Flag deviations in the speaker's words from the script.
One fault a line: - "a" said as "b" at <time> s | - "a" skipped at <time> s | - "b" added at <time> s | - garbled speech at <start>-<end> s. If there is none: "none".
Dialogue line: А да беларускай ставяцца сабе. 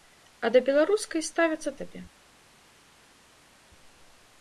none